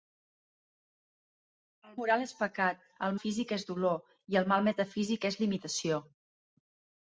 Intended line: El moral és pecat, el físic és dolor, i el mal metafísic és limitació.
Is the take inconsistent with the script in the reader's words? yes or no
no